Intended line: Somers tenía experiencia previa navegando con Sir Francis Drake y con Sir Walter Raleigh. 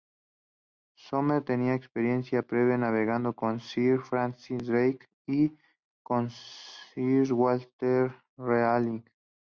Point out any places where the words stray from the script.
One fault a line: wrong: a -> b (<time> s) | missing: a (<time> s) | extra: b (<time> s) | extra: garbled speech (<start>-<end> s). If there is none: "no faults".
no faults